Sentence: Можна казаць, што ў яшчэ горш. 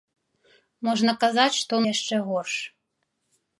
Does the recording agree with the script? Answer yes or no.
yes